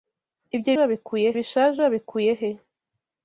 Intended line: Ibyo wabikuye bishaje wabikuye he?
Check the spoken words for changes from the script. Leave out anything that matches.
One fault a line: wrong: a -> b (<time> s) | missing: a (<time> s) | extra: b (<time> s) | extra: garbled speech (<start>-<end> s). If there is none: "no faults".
no faults